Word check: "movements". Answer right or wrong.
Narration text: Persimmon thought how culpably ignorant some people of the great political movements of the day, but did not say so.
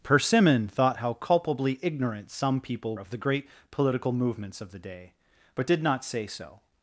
right